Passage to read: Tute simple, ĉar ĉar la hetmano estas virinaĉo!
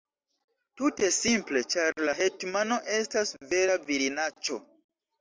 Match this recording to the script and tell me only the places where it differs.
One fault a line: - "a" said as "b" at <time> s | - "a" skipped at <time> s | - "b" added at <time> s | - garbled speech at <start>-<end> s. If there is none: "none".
- "ĉar" skipped at 2.0 s
- "vera" added at 3.6 s